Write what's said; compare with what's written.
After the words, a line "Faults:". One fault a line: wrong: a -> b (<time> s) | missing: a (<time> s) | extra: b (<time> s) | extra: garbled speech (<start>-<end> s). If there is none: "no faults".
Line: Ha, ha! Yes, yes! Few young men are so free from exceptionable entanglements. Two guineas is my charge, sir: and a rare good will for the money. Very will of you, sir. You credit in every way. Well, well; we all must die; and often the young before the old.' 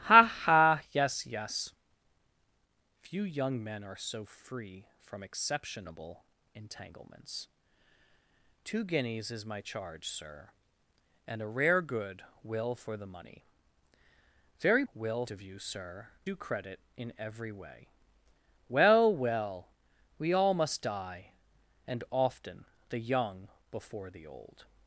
Ha, ha! Yes, yes! Few young men are so free from exceptionable entanglements. Two guineas is my charge, sir: and a rare good will for the money. Very will of you, sir. You credit in every way. Well, well; we all must die; and often the young before the old.'
Faults:
no faults